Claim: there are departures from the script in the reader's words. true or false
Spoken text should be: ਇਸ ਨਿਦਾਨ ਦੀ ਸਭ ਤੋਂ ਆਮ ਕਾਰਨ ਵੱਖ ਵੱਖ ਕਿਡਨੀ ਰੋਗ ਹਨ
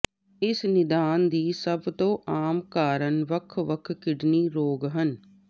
false